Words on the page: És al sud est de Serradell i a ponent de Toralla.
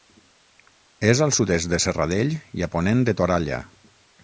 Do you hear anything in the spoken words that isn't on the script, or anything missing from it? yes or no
no